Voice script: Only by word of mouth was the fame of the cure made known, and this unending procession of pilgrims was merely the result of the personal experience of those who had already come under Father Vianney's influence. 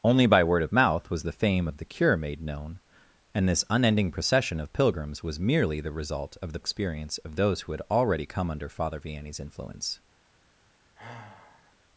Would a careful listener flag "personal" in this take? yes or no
yes